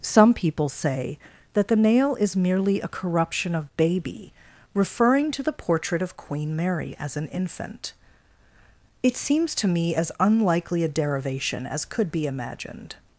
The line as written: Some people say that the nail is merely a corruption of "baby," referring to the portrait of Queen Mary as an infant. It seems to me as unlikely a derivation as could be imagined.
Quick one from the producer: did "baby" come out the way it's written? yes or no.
yes